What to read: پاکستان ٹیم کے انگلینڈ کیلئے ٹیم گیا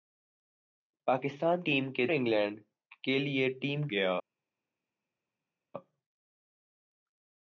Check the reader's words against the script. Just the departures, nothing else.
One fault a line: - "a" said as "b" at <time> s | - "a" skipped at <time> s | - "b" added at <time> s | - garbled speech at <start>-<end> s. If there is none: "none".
none